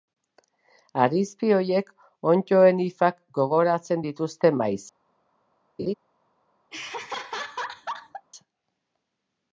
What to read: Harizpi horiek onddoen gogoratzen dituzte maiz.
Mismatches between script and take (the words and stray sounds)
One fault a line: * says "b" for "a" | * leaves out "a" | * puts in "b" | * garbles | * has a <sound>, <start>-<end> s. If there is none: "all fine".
* puts in "hifak"
* has a laugh, 5.8-5.9 s
* has a laugh, 6.7-8.3 s